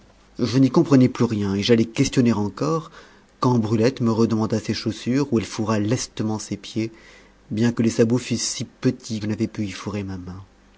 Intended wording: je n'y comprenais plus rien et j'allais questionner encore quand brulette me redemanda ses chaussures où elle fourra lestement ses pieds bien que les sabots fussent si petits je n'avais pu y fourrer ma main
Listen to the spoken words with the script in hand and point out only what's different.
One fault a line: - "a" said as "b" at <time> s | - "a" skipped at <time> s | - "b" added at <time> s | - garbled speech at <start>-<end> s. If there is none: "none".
none